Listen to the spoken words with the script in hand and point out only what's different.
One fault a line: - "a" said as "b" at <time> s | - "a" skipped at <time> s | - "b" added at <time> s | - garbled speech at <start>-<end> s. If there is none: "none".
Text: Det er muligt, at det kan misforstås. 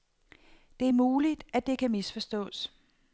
none